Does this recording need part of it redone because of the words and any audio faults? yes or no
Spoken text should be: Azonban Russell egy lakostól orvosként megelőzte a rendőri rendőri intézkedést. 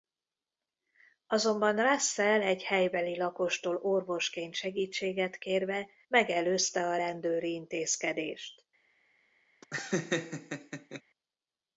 yes